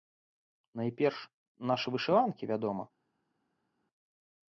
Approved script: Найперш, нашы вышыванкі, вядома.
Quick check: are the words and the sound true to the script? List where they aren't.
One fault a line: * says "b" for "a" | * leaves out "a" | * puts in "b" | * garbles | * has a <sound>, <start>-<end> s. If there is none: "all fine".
all fine